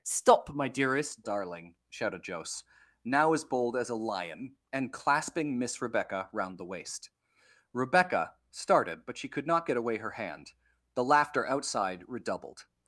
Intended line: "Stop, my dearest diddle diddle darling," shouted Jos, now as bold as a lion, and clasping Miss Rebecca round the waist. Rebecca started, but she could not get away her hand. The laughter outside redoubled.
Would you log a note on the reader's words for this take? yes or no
yes